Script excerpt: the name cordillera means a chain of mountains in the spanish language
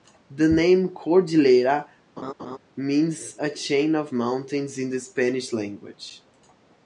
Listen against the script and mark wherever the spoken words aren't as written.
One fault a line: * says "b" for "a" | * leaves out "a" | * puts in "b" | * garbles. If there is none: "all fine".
all fine